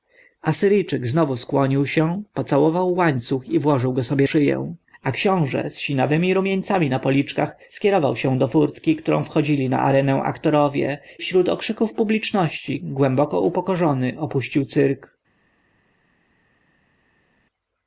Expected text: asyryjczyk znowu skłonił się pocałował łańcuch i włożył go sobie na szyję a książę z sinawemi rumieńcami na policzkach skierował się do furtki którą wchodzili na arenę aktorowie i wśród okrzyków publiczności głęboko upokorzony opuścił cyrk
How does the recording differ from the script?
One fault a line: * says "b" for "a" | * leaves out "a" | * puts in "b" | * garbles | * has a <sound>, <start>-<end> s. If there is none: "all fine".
* leaves out "na"
* leaves out "i"